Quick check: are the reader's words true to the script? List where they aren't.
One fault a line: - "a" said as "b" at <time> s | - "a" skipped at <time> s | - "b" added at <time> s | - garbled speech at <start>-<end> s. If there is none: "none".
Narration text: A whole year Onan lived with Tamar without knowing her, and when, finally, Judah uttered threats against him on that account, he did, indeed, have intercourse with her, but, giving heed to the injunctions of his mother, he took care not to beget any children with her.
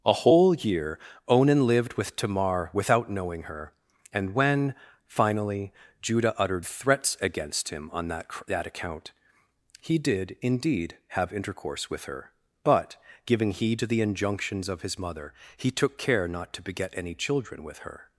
- "that" added at 8.5 s